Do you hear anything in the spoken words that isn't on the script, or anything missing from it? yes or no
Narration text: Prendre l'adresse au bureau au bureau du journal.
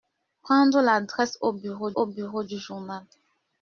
no